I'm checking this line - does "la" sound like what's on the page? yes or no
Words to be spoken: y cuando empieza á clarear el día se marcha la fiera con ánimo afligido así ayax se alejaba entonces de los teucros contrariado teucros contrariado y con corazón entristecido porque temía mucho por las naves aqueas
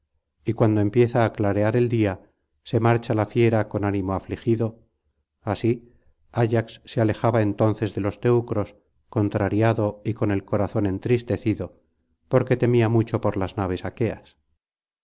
yes